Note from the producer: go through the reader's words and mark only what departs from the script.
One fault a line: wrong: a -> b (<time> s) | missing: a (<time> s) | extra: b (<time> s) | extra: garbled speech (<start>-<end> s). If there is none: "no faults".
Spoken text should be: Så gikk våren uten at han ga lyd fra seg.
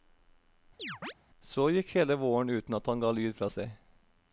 extra: hele (2.0 s)